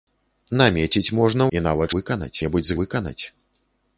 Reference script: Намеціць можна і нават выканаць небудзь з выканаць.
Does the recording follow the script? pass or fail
pass